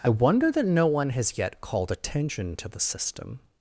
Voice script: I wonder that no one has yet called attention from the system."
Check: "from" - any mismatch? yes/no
yes